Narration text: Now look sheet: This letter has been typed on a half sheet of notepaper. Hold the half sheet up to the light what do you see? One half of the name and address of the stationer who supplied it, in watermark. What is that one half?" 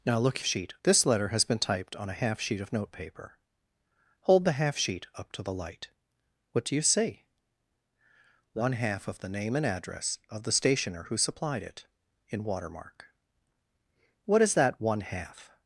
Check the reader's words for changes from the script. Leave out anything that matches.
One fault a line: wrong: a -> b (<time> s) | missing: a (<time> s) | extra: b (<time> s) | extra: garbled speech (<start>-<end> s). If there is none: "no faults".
no faults